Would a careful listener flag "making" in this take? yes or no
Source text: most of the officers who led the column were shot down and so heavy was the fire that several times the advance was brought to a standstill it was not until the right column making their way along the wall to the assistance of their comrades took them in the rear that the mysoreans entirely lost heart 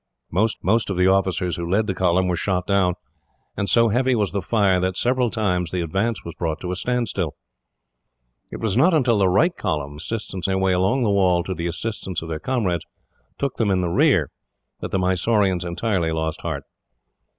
yes